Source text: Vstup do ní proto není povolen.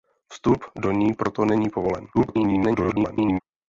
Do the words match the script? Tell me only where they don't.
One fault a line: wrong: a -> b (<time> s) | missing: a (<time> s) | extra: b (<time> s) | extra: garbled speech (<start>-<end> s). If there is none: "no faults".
extra: garbled speech (2.1-3.4 s)